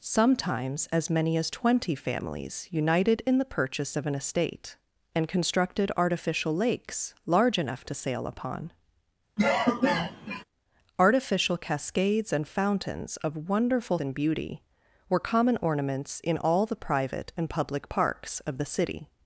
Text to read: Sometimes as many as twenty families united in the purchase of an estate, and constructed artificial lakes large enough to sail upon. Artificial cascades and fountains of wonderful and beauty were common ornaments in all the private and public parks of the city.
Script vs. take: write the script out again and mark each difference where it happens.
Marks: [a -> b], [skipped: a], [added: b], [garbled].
Sometimes as many as twenty families united in the purchase of an estate, and constructed artificial lakes large enough to sail upon. Artificial cascades and fountains of wonderful and beauty were common ornaments in all the private and public parks of the city.